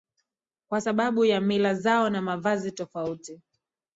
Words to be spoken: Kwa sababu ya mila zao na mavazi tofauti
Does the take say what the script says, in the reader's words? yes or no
yes